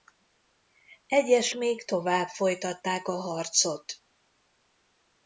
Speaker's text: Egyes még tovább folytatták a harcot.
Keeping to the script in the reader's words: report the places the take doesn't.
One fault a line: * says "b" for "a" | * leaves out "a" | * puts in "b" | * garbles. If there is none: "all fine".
all fine